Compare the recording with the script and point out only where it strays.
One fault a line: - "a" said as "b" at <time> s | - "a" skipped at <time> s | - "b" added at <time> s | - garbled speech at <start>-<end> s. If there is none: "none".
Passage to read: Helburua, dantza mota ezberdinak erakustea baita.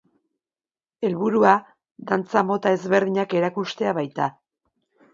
none